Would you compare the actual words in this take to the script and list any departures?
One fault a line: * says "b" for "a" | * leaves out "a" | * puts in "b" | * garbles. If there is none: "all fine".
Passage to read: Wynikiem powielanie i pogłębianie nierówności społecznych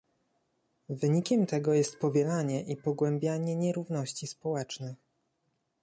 * puts in "tego jest"